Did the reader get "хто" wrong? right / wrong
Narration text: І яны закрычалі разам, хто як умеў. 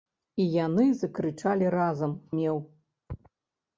wrong